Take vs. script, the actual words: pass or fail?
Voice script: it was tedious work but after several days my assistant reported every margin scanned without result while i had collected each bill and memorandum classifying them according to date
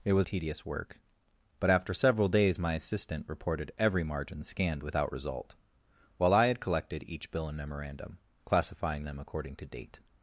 pass